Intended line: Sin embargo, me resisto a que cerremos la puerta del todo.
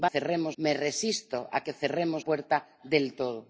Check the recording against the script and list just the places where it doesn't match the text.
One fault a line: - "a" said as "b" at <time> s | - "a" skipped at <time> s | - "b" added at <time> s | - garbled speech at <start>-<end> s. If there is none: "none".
- "embargo" said as "cerremos" at 0.0 s
- "la" skipped at 2.2 s